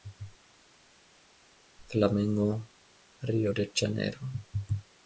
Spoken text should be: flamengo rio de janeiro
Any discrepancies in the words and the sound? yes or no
no